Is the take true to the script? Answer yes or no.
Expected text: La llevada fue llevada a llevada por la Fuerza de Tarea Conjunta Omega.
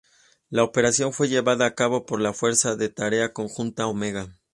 no